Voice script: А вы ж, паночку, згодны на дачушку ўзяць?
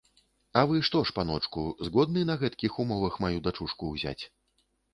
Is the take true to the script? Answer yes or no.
no